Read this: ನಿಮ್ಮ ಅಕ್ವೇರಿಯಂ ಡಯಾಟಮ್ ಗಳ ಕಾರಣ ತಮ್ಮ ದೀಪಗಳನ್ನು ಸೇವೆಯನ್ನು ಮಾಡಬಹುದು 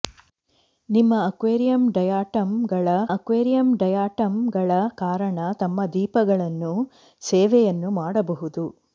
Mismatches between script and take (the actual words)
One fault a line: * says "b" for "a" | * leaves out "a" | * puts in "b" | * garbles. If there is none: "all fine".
* puts in "ಅಕ್ವೇರಿಯಂ ಡಯಾಟಮ್ ಗಳ"